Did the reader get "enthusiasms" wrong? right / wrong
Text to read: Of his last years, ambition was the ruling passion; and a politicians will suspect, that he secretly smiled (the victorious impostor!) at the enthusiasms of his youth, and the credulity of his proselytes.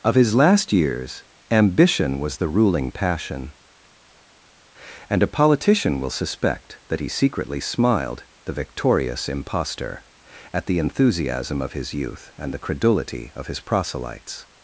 wrong